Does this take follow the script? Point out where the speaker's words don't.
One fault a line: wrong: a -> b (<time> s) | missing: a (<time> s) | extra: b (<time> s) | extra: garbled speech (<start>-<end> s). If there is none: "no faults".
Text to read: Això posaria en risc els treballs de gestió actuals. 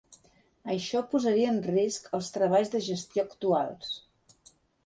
no faults